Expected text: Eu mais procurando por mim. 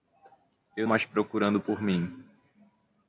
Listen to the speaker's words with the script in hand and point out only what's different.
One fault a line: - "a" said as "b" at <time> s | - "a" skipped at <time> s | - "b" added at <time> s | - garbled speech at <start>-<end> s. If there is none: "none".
none